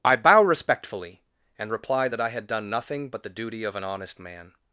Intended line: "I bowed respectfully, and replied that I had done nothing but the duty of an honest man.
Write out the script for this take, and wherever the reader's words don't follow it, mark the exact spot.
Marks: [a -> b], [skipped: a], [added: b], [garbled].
"I [bowed -> bow] respectfully, and replied that I had done nothing but the duty of an honest man.